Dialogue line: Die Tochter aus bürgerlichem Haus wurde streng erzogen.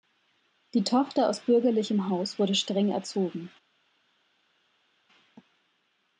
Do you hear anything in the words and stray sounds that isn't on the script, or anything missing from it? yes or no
no